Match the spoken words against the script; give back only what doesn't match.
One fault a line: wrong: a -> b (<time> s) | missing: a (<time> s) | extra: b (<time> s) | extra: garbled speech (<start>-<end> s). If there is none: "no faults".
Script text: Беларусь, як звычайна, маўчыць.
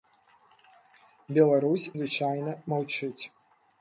missing: як (1.9 s)